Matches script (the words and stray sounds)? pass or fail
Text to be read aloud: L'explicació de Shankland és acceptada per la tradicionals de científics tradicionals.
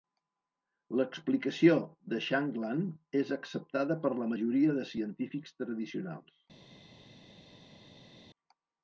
fail